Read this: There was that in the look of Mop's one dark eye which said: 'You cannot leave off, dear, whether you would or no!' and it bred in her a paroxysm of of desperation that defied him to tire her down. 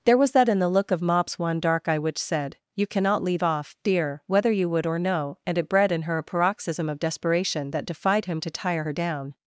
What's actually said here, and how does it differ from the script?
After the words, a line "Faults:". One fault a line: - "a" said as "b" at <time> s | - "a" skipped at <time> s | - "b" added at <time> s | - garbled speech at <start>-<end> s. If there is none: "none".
There was that in the look of Mop's one dark eye which said: 'You cannot leave off, dear, whether you would or no!' and it bred in her a paroxysm of desperation that defied him to tire her down.
Faults:
- "of" skipped at 7.0 s